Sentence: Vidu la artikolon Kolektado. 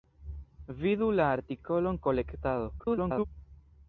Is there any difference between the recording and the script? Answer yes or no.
yes